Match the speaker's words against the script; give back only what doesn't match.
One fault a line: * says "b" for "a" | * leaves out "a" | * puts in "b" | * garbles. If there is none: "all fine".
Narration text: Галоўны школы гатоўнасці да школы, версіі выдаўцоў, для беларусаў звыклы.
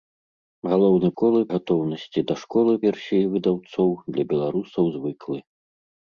all fine